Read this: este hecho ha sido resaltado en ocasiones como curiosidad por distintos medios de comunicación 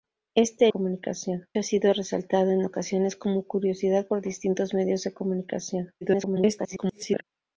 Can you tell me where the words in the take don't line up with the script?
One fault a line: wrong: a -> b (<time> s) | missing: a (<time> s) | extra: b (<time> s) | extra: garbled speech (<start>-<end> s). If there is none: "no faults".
wrong: hecho -> comunicación (0.7 s)
extra: garbled speech (6.0-7.2 s)